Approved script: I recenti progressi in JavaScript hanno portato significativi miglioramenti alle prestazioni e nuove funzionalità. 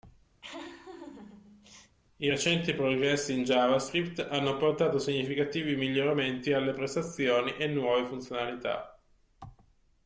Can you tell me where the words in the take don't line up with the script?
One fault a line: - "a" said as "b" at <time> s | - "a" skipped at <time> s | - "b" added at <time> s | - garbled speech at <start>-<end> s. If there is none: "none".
none